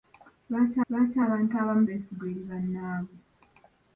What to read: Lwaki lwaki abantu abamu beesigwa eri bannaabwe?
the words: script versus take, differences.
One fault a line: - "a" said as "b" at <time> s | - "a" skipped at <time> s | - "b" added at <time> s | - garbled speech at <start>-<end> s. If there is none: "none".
none